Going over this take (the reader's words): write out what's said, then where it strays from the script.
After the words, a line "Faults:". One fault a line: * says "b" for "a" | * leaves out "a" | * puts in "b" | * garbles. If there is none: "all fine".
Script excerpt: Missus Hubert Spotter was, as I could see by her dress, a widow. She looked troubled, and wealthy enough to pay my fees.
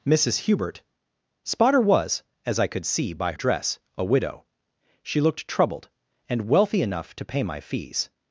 Missus Hubert Spotter was, as I could see by dress, a widow. She looked troubled, and wealthy enough to pay my fees.
Faults:
* leaves out "her"